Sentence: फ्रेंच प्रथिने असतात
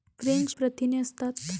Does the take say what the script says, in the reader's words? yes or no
yes